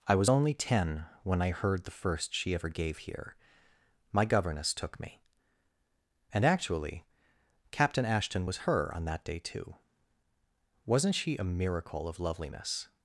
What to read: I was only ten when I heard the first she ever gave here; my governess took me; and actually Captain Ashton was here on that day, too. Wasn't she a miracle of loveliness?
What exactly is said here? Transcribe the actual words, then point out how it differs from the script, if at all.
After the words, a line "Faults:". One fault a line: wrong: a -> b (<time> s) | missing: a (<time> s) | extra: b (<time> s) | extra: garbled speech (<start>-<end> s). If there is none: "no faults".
I was only ten when I heard the first she ever gave here; my governess took me; and actually Captain Ashton was her on that day, too. Wasn't she a miracle of loveliness?
Faults:
wrong: here -> her (8.6 s)